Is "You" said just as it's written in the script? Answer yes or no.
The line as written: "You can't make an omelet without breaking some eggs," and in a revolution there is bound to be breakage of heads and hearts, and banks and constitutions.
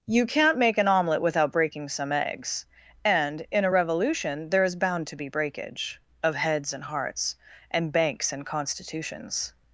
yes